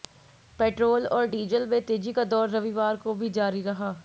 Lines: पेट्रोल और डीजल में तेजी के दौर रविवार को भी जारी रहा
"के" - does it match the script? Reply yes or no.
no